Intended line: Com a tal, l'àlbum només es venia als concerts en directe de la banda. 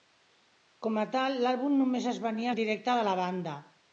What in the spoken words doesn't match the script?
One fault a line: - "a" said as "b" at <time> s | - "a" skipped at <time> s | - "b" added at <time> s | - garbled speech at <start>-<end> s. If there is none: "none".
- "als concerts" skipped at 2.5 s